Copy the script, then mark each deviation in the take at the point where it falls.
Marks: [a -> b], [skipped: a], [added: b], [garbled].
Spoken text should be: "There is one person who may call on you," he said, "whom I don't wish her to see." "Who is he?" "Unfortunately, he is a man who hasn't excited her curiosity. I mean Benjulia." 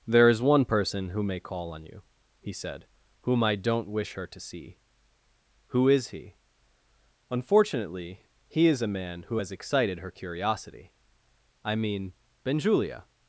"There is one person who may call on you," he said, "whom I don't wish her to see." "Who is he?" "Unfortunately, he is a man who [hasn't -> has] excited her curiosity. I mean Benjulia."